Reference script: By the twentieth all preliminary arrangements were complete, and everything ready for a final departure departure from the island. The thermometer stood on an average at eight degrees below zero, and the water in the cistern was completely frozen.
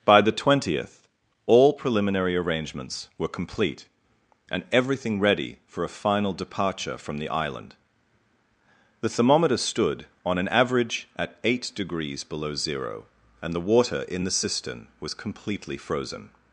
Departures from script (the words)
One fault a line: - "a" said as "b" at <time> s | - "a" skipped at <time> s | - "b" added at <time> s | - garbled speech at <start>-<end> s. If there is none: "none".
- "departure" skipped at 7.0 s